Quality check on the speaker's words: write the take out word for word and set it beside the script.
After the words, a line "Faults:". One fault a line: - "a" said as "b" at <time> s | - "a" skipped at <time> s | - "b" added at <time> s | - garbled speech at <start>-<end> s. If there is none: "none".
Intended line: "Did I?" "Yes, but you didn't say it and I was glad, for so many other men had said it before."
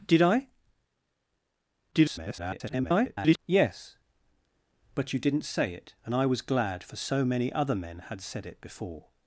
"Did I?" [garbled] "Yes, but you didn't say it and I was glad, for so many other men had said it before."
Faults:
- garbled speech at 1.9-3.4 s